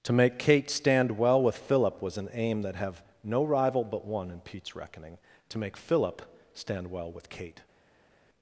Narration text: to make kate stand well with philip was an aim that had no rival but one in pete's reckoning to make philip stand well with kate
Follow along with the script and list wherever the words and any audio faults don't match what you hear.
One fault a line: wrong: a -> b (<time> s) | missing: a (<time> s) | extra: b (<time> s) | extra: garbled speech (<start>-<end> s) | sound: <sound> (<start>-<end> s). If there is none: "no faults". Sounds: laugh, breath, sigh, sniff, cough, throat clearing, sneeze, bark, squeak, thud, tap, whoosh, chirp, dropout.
wrong: had -> have (2.8 s)